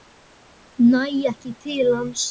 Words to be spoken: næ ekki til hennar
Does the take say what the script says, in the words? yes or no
no